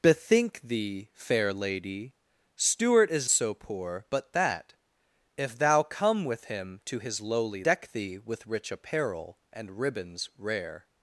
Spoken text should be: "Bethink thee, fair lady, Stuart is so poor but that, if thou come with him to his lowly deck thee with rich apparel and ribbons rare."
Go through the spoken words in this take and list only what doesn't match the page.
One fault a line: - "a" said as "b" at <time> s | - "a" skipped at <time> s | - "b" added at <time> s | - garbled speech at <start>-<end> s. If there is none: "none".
none